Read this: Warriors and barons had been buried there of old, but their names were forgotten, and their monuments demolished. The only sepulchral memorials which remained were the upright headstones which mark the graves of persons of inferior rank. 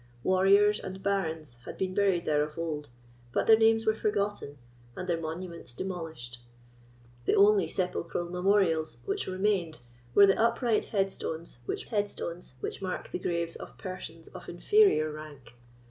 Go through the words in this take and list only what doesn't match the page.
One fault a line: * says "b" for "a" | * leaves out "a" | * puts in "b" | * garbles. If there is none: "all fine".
* puts in "headstones which"